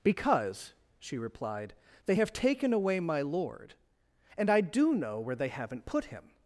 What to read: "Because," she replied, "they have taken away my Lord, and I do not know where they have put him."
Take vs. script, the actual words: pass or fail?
fail